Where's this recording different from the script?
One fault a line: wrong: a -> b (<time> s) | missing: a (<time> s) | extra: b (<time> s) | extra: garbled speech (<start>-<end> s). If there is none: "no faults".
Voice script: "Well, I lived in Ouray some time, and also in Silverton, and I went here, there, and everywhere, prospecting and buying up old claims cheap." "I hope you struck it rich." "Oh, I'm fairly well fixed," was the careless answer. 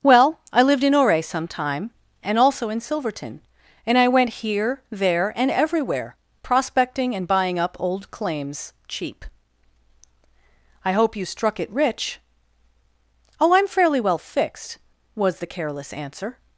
no faults